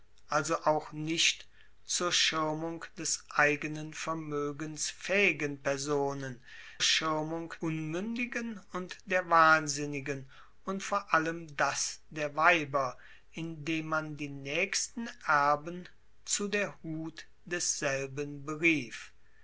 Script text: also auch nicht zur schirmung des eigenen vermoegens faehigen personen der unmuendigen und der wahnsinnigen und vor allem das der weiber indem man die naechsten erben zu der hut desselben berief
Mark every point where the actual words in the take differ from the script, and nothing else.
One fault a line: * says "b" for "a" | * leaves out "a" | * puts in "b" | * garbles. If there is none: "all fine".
* says "schirmung" for "der"